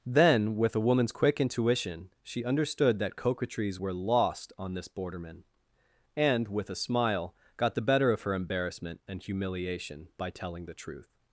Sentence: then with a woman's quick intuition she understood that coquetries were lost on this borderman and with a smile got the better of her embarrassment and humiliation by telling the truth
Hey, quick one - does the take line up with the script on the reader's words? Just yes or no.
yes